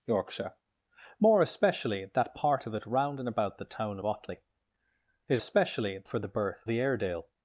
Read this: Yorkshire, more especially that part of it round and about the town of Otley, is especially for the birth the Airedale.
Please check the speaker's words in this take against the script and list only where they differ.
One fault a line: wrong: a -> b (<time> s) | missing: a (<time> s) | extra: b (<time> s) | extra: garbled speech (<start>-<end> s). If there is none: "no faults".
no faults